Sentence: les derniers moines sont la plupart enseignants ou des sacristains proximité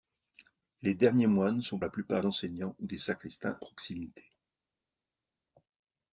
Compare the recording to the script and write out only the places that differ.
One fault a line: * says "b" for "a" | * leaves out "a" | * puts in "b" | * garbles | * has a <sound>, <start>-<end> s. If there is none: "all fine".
all fine